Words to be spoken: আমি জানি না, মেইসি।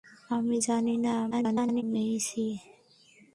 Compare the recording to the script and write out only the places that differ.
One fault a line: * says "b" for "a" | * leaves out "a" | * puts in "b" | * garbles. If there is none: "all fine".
* garbles